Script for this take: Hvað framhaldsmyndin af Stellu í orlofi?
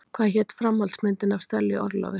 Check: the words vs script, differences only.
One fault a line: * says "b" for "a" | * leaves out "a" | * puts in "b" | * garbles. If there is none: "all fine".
* puts in "hét"